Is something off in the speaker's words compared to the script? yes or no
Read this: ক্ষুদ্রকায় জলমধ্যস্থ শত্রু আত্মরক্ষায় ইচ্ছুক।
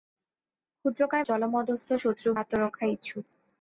no